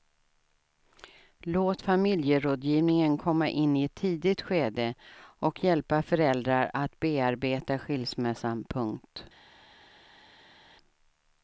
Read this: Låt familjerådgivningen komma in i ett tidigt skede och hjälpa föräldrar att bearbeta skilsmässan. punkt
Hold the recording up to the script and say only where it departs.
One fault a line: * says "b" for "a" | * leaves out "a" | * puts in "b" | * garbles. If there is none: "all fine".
all fine